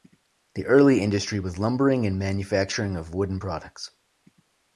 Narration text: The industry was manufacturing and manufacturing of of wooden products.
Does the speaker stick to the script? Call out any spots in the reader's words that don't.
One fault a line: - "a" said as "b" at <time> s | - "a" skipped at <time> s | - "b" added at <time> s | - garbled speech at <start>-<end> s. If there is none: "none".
- "early" added at 0.7 s
- "manufacturing" said as "lumbering" at 1.6 s
- "of" skipped at 3.1 s